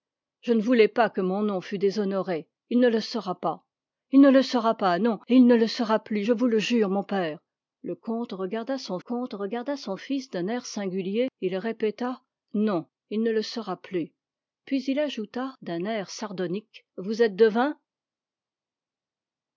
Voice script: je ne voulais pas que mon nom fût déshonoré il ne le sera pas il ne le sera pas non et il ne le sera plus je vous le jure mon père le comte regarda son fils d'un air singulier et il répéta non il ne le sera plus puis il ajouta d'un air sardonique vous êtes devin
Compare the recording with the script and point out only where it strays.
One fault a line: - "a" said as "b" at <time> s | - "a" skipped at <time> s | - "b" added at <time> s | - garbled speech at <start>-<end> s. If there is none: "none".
- "comte regarda son" added at 9.0 s